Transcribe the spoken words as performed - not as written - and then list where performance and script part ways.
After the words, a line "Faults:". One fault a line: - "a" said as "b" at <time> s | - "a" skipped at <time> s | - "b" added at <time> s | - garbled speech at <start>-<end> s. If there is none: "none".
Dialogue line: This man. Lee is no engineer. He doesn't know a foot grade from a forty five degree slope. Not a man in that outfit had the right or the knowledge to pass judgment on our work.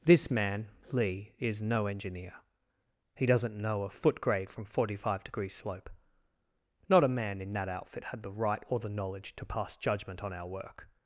This man. Lee is no engineer. He doesn't know a foot grade from forty five degree slope. Not a man in that outfit had the right or the knowledge to pass judgment on our work.
Faults:
- "a" skipped at 4.7 s